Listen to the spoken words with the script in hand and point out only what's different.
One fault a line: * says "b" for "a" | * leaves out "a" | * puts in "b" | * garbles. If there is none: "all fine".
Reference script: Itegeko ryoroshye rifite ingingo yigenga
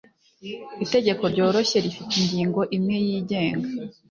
* puts in "imwe"